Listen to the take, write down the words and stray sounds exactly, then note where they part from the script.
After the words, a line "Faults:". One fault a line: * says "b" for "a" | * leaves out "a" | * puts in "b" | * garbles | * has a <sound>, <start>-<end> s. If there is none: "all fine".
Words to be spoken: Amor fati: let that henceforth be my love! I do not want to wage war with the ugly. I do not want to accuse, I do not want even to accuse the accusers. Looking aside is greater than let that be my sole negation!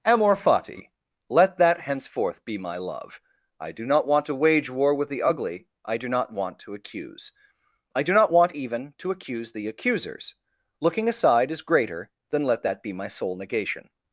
Amor fati: let that henceforth be my love! I do not want to wage war with the ugly. I do not want to accuse, I do not want even to accuse the accusers. Looking aside is greater than let that be my sole negation!
Faults:
all fine